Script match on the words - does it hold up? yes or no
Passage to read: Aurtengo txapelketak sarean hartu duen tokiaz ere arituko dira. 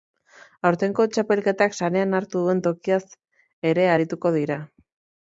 yes